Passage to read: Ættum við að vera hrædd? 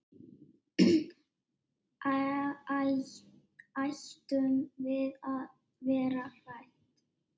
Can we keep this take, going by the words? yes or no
yes